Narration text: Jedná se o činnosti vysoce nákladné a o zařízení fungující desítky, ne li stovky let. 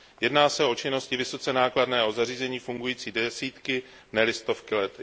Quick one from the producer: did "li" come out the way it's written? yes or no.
yes